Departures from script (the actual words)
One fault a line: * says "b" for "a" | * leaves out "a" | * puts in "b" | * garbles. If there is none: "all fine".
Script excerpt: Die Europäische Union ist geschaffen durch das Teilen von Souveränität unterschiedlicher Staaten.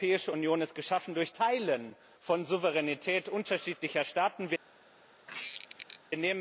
* leaves out "das"